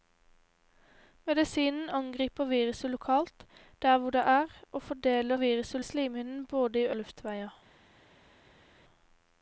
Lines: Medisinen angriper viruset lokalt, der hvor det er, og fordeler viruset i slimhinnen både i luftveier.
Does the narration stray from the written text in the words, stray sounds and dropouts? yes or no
no